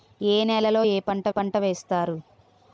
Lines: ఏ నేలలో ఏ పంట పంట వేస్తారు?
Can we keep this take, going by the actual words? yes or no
yes